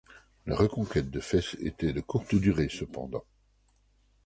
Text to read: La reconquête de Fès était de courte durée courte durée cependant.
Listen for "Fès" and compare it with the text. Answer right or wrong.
right